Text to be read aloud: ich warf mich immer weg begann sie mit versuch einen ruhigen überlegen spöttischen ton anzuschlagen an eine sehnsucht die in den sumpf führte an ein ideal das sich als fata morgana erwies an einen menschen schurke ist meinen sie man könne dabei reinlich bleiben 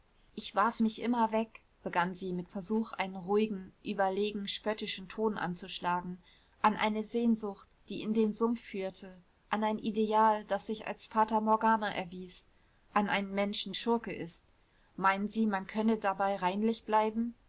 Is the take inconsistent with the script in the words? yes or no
no